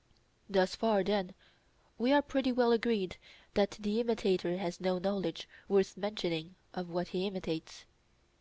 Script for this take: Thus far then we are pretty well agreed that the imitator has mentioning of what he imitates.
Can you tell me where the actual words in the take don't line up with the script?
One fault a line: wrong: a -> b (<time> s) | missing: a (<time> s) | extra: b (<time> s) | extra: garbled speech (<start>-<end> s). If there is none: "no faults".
extra: no knowledge worth (4.8 s)